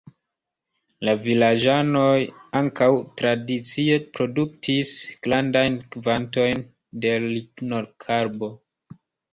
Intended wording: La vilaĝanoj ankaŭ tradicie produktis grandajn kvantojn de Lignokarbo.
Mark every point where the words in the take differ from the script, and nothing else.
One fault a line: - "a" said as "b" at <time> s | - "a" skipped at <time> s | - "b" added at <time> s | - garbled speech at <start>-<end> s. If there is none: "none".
none